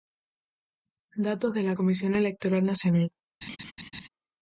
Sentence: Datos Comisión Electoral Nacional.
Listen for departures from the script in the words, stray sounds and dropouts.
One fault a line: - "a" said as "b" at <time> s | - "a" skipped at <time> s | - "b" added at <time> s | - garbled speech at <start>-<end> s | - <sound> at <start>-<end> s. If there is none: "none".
- "de la" added at 1.5 s
- laugh at 3.4-4.1 s